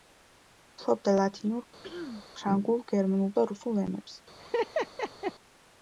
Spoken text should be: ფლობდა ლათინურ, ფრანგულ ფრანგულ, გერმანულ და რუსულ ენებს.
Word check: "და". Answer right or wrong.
right